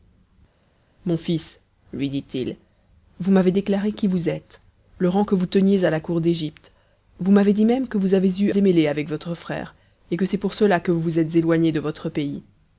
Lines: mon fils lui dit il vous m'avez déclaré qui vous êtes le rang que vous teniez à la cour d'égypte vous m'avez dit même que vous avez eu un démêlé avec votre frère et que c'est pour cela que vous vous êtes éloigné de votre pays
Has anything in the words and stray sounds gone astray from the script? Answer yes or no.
yes